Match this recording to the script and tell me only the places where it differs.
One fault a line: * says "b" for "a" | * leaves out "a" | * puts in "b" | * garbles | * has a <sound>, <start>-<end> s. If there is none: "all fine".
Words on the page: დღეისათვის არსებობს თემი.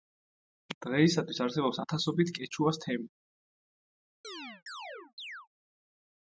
* puts in "ათასობით კეჩუას"
* has a chirp, 4.2-5.5 s